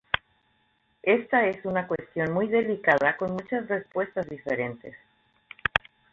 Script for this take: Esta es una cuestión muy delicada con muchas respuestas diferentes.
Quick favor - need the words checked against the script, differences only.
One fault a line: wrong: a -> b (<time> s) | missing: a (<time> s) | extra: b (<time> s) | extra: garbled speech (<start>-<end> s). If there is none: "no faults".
no faults